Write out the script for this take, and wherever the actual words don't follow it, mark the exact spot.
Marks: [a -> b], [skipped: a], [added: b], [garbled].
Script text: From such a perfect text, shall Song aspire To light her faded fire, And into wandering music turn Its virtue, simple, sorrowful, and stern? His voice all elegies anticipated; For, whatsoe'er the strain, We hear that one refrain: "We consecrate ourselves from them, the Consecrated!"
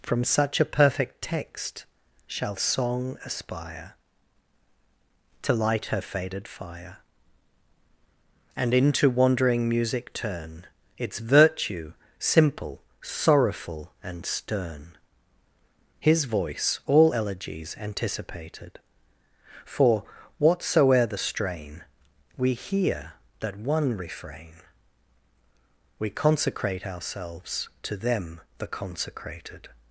From such a perfect text, shall Song aspire To light her faded fire, And into wandering music turn Its virtue, simple, sorrowful, and stern? His voice all elegies anticipated; For, whatsoe'er the strain, We hear that one refrain: "We consecrate ourselves [from -> to] them, the Consecrated!"